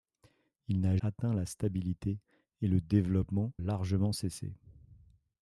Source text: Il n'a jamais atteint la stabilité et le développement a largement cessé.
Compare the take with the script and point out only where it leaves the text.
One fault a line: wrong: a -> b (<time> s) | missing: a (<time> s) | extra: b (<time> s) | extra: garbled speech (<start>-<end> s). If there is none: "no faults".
missing: jamais (1.0 s)
missing: a (3.5 s)